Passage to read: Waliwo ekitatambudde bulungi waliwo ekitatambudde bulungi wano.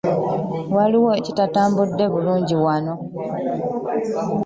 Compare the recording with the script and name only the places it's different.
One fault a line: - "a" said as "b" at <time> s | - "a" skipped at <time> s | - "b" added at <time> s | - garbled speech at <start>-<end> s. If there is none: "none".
- "waliwo ekitatambudde bulungi" skipped at 2.5 s